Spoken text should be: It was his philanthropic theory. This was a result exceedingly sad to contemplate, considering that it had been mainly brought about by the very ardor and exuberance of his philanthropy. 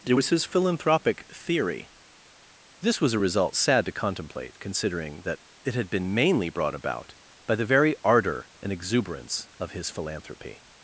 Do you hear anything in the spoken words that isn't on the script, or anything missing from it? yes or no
yes